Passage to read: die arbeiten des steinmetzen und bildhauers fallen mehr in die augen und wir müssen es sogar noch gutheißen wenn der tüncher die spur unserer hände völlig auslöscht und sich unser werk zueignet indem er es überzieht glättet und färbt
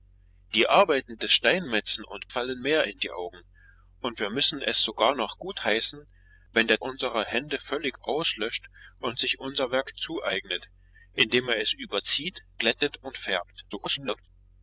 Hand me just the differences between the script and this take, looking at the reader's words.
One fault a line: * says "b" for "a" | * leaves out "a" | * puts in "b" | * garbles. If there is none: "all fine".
* leaves out "bildhauers"
* leaves out "tüncher die spur"
* garbles